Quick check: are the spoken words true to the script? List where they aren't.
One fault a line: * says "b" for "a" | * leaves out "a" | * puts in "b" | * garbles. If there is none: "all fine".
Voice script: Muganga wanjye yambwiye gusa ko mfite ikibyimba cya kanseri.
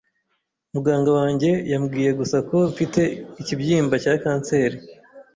all fine